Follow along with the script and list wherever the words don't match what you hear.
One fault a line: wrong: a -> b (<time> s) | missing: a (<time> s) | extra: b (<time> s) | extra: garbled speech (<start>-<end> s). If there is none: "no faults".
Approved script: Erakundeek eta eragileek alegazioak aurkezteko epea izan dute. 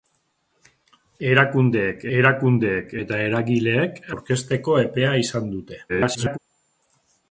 extra: erakundeek (2.2 s)
missing: alegazioak (4.0 s)
extra: garbled speech (5.9-6.4 s)